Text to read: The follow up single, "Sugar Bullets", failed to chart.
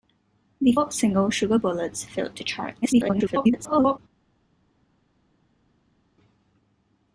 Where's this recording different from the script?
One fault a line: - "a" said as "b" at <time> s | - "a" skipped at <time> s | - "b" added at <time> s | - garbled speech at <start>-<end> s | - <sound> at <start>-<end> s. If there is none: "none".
- "follow" skipped at 0.8 s
- garbled speech at 2.8-4.0 s